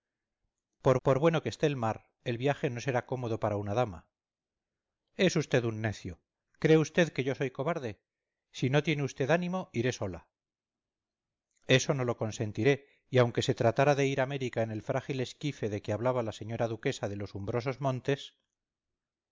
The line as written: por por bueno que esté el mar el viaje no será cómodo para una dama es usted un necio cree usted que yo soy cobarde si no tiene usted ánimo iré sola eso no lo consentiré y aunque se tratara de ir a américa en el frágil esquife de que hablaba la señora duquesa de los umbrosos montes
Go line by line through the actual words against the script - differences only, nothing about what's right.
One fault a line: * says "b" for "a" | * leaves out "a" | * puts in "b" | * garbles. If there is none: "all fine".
all fine